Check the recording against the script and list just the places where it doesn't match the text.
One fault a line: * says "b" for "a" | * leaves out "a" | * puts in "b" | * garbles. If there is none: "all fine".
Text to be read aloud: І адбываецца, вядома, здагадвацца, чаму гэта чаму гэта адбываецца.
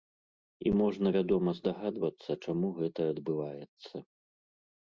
* says "можна" for "адбываецца"
* leaves out "чаму гэта"